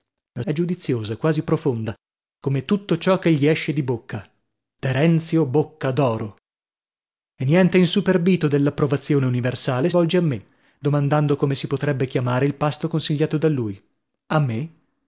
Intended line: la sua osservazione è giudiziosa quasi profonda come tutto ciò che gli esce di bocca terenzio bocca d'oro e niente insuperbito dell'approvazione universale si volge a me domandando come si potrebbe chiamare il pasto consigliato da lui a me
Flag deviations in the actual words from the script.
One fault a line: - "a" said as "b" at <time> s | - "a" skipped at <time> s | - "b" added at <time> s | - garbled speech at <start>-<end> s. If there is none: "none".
- "sua osservazione" skipped at 0.4 s
- "si" skipped at 9.9 s